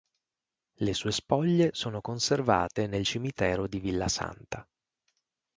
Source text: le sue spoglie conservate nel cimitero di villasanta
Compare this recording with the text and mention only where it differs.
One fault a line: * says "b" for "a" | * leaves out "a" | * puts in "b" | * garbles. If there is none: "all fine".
* puts in "sono"